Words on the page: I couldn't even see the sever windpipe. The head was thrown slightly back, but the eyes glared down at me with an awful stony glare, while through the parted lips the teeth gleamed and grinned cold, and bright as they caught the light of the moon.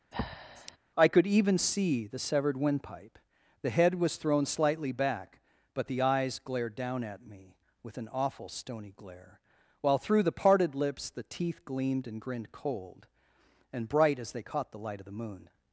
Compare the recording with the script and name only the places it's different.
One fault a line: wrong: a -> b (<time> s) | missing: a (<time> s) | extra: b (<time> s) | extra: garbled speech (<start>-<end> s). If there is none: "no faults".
wrong: couldn't -> could (1.1 s)
wrong: sever -> severed (2.2 s)